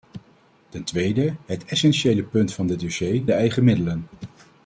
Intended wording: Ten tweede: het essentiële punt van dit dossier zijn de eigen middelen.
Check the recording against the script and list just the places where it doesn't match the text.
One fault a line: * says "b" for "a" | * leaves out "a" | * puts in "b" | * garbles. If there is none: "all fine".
* leaves out "zijn"